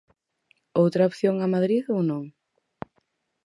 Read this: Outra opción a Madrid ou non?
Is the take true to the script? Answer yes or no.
yes